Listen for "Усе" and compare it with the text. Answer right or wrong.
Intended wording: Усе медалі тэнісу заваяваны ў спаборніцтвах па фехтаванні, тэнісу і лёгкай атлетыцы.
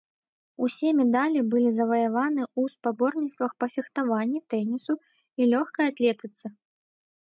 right